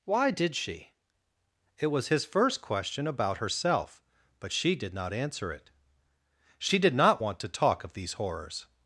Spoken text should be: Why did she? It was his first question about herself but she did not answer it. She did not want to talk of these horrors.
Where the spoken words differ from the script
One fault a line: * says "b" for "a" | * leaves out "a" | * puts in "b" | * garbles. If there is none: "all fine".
all fine